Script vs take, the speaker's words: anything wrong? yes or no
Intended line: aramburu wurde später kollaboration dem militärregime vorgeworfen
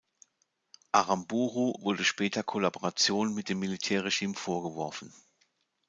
yes